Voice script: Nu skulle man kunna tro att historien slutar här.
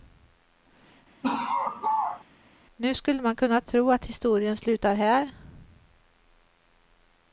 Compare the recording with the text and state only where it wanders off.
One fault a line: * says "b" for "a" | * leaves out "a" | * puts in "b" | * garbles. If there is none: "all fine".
all fine